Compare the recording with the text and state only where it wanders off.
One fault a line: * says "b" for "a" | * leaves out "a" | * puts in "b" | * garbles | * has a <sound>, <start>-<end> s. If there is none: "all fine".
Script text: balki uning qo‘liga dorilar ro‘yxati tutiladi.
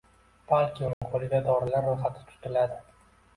* has a dropout, 0.9-1.0 s